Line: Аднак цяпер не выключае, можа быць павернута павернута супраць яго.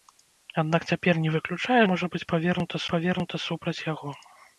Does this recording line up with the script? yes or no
yes